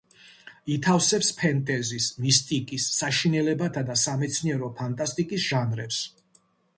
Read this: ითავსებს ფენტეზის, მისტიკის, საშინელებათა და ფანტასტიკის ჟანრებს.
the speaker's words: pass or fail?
fail